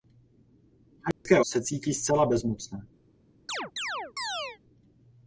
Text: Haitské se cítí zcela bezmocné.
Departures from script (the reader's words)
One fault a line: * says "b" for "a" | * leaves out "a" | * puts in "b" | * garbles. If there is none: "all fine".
all fine